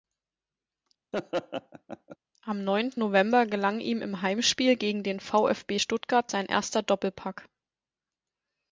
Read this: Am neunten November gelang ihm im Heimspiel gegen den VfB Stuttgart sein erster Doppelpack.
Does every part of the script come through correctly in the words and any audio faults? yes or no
no